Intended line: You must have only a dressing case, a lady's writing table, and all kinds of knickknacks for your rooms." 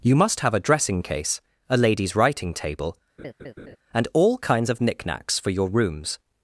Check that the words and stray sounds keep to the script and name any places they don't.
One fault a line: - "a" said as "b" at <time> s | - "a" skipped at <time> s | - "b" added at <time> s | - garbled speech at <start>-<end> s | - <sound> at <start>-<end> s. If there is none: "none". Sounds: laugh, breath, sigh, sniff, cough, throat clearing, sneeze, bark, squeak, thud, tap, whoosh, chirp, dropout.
- "only" skipped at 0.6 s
- laugh at 3.2-3.8 s